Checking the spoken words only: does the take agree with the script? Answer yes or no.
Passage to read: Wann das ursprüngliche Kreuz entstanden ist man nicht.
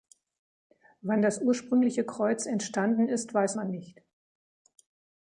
no